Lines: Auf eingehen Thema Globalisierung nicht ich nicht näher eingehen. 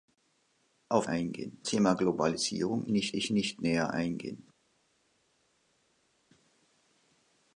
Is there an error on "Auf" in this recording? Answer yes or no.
no